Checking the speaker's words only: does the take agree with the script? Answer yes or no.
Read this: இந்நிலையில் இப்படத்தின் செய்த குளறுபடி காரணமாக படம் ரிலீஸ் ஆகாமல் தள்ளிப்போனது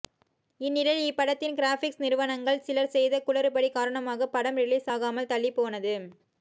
no